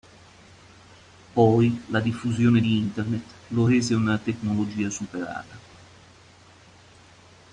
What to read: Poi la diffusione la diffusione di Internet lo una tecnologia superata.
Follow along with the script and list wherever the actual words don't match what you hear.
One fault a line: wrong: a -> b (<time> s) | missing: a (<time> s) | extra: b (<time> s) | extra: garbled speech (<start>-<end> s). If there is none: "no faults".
missing: la diffusione (2.6 s)
extra: rese (3.6 s)